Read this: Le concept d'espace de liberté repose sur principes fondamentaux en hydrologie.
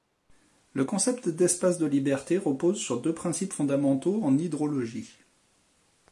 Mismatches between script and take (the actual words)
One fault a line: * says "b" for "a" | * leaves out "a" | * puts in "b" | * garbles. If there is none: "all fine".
* puts in "deux"